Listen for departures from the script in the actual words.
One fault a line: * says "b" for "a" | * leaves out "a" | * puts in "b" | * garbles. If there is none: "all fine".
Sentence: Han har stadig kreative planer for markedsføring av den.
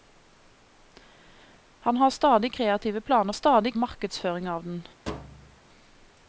* says "stadig" for "for"